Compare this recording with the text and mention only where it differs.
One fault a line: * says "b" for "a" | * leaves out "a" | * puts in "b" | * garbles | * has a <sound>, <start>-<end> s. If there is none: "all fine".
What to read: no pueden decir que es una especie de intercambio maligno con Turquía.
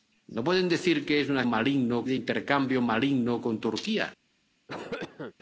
* says "maligno" for "especie"
* has a cough, 4.7-5.3 s